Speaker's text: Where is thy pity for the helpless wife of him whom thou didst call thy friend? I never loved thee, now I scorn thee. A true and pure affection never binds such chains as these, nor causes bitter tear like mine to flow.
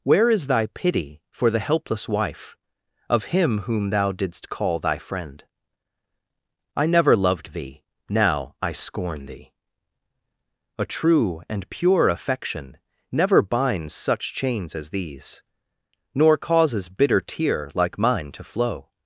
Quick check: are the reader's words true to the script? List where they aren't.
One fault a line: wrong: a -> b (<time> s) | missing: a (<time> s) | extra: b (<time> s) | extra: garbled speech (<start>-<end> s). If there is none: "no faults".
no faults